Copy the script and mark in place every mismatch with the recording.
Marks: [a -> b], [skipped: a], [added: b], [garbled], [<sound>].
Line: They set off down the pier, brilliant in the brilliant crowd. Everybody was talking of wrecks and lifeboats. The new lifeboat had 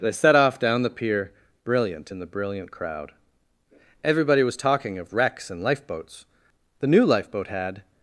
They set off down the pier, brilliant in the brilliant crowd. Everybody was talking of wrecks and lifeboats. The new lifeboat had